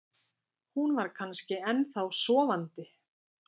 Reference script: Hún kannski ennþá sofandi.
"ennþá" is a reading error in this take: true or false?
false